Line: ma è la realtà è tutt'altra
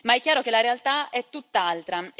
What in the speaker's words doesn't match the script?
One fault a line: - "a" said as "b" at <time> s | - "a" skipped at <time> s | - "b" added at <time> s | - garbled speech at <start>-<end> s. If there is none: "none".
- "chiaro che" added at 0.2 s